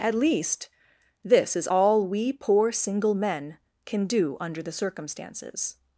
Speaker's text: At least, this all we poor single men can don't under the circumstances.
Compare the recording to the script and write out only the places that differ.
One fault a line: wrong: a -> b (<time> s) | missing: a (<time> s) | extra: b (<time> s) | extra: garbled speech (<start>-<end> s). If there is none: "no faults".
extra: is (1.6 s)
wrong: don't -> do (4.1 s)